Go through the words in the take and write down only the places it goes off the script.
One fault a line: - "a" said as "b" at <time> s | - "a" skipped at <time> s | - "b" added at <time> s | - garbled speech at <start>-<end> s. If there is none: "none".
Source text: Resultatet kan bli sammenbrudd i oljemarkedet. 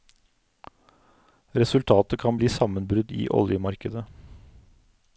none